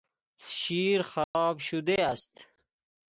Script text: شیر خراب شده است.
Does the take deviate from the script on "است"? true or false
false